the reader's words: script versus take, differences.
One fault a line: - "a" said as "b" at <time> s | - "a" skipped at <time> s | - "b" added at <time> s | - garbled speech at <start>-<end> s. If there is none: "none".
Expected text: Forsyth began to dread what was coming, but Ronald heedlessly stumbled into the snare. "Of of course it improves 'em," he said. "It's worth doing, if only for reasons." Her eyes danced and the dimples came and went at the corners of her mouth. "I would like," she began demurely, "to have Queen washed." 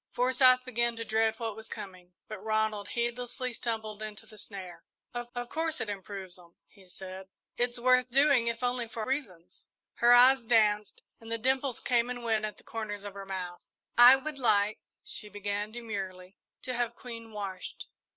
none